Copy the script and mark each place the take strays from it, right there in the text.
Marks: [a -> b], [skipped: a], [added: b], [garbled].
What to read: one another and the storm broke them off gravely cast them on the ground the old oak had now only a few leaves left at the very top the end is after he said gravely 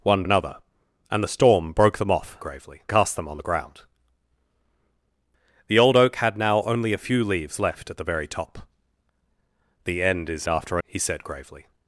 one another and the storm broke them off gravely cast them on the ground the old oak had now only a few leaves left at the very top the end is after he said gravely